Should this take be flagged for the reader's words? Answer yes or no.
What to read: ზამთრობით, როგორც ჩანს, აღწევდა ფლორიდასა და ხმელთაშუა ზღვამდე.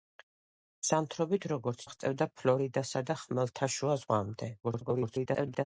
yes